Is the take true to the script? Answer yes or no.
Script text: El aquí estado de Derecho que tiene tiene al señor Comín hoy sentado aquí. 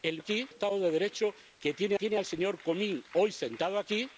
yes